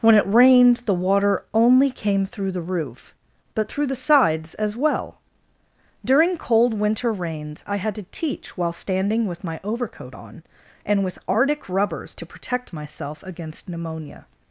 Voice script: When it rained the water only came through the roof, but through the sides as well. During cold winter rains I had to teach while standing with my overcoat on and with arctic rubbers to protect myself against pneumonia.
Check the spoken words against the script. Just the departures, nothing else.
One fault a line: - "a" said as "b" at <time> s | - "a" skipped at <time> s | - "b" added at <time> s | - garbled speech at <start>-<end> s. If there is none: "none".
none